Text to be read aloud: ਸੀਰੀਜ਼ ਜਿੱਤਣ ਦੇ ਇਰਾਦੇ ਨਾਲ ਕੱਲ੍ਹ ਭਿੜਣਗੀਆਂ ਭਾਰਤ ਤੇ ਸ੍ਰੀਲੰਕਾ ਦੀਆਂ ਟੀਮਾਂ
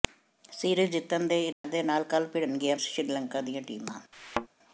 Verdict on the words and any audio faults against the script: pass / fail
fail